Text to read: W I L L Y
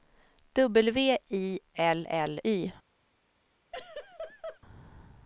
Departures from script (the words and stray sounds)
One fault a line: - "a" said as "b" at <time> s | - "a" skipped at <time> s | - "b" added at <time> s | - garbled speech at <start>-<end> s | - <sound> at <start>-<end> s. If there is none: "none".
- laugh at 3.7-4.6 s